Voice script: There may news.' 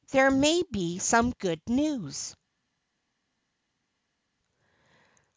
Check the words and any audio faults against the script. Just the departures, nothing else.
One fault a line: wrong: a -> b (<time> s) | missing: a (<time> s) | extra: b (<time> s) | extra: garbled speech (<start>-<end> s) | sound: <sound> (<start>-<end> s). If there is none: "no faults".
extra: be some good (0.7 s)